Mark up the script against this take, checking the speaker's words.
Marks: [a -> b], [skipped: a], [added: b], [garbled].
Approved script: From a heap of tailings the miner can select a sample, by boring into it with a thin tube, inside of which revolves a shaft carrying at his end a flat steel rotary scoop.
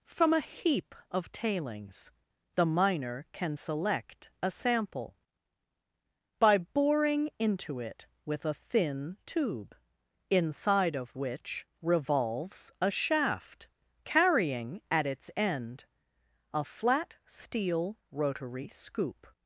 From a heap of tailings the miner can select a sample, by boring into it with a thin tube, inside of which revolves a shaft carrying at [his -> its] end a flat steel rotary scoop.